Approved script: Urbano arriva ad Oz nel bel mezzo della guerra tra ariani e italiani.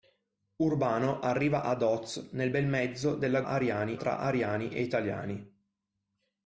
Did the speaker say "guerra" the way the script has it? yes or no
no